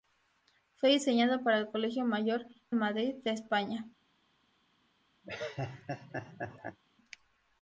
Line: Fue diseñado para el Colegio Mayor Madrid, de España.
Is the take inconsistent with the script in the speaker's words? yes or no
no